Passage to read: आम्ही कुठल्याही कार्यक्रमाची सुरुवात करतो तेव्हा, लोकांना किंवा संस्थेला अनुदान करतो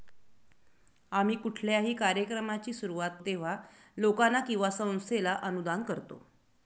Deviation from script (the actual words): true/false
true